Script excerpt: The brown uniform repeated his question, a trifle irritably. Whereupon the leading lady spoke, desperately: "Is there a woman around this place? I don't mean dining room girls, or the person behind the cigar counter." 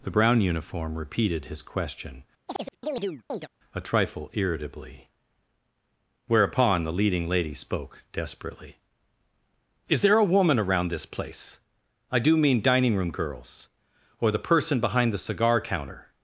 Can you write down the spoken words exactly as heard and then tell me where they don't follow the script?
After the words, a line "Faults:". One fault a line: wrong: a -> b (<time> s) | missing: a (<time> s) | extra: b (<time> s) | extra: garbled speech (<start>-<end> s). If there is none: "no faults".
The brown uniform repeated his question, a trifle irritably. Whereupon the leading lady spoke, desperately: "Is there a woman around this place? I do mean dining room girls, or the person behind the cigar counter."
Faults:
wrong: don't -> do (12.2 s)